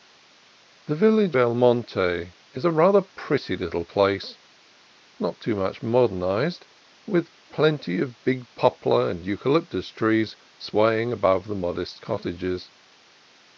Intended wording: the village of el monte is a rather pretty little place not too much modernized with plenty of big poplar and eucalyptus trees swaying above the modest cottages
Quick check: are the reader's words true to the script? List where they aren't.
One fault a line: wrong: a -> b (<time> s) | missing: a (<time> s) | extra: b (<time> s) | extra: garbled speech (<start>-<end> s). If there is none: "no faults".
missing: of (1.4 s)